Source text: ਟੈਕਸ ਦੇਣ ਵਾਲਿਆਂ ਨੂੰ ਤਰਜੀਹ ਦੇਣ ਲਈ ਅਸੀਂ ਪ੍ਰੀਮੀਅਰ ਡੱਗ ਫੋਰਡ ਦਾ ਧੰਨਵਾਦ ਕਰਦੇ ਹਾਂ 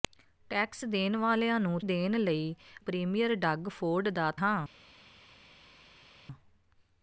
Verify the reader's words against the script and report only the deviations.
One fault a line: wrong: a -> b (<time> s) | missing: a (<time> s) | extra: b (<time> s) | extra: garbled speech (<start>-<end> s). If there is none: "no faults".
missing: ਤਰਜੀਹ (1.8 s)
missing: ਅਸੀਂ (2.5 s)
missing: ਧੰਨਵਾਦ ਕਰਦੇ (4.3 s)